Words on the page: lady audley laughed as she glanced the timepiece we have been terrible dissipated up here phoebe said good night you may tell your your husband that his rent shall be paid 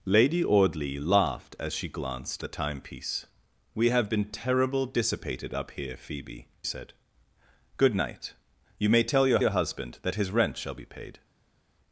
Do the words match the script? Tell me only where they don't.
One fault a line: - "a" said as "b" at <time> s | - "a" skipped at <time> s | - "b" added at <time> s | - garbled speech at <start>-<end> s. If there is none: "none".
none